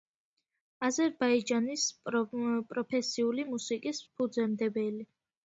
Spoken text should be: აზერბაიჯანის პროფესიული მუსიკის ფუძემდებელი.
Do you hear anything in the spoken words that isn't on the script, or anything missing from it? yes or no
no